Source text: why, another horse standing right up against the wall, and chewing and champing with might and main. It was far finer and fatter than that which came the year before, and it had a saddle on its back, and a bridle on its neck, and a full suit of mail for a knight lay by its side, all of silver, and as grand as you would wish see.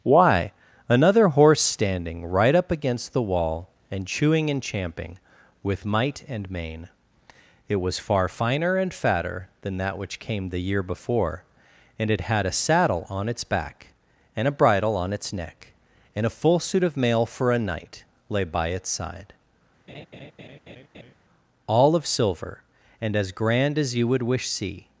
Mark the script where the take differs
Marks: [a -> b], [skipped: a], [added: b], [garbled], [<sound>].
why, another horse standing right up against the wall, and chewing and champing with might and main. It was far finer and fatter than that which came the year before, and it had a saddle on its back, and a bridle on its neck, and a full suit of mail for a knight lay by its side, [laugh] all of silver, and as grand as you would wish see.